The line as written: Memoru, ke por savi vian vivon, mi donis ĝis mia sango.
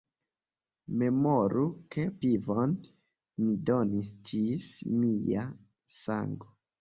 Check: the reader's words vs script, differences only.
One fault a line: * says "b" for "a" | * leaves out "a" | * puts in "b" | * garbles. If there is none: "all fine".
* leaves out "por savi vian"